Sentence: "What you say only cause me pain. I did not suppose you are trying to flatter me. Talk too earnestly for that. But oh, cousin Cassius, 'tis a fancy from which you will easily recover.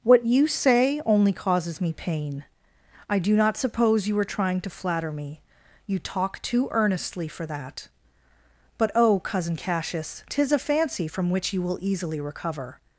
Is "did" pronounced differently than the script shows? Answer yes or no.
yes